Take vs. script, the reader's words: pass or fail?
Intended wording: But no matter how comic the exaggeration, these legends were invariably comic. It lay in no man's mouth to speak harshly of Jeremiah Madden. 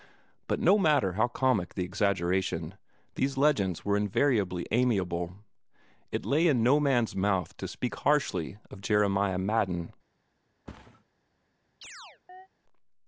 fail